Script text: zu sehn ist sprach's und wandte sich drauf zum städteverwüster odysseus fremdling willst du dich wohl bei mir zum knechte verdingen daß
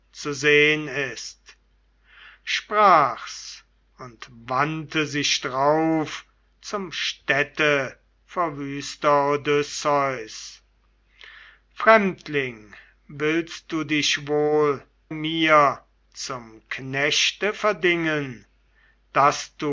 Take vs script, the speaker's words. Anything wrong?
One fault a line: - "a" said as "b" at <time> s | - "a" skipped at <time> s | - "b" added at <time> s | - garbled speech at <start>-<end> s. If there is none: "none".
- "bei" skipped at 14.8 s